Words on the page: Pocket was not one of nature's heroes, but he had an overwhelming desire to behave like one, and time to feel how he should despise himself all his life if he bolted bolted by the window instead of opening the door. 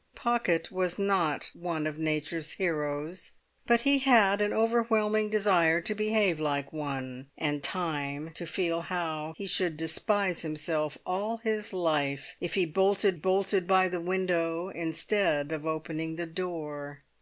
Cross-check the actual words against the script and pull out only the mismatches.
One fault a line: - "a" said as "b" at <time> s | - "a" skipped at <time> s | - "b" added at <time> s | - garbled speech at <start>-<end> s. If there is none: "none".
none